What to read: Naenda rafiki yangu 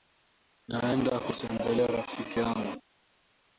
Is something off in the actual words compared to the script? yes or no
yes